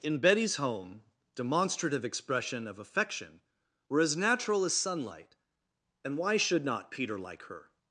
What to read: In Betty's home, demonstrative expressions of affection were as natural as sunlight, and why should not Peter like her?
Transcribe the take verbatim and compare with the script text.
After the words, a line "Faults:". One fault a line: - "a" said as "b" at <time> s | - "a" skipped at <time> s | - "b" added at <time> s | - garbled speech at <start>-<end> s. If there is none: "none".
In Betty's home, demonstrative expression of affection were as natural as sunlight, and why should not Peter like her?
Faults:
- "expressions" said as "expression" at 2.0 s